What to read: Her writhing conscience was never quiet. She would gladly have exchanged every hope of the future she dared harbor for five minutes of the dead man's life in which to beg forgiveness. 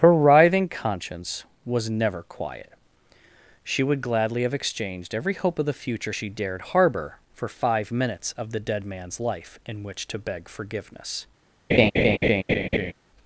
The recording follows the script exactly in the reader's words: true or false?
true